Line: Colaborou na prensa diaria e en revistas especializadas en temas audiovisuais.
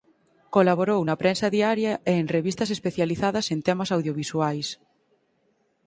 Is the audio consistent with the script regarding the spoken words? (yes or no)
yes